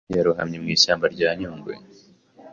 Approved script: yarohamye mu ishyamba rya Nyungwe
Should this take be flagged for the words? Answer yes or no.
no